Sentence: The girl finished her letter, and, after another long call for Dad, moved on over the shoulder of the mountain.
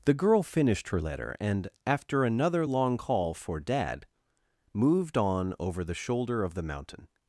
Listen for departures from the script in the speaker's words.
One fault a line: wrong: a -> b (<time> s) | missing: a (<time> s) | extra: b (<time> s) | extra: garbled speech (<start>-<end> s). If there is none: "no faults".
no faults